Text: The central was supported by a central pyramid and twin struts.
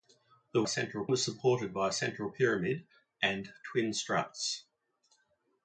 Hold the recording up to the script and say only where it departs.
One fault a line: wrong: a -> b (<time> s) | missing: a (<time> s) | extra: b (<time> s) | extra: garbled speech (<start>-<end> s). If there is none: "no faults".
no faults